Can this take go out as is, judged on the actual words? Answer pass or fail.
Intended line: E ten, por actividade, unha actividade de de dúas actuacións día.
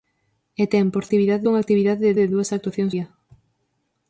pass